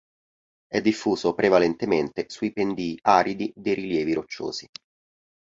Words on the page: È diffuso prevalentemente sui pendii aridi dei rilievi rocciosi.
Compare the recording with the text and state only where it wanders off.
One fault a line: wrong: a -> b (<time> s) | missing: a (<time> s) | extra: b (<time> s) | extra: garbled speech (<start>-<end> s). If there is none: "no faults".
no faults